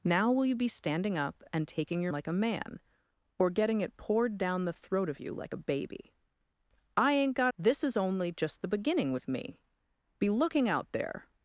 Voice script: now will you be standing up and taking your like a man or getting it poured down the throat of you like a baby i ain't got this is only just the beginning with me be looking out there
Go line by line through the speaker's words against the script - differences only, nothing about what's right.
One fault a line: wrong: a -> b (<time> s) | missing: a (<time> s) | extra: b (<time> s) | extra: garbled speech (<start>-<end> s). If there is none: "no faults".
no faults